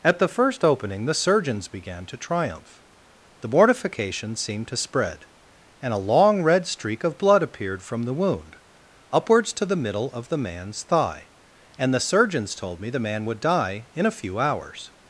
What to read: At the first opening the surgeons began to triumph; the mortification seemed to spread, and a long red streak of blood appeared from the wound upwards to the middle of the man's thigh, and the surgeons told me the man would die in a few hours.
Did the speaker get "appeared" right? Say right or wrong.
right